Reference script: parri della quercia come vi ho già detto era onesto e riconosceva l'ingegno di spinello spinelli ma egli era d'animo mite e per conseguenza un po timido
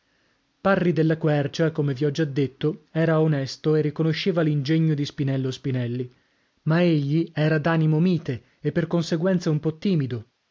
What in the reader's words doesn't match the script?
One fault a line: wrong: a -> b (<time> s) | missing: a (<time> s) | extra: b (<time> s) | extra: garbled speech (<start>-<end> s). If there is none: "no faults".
no faults